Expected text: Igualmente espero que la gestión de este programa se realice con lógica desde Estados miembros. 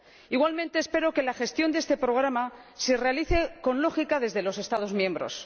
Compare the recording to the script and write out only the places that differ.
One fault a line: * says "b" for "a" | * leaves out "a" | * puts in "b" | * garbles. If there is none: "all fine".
* puts in "los"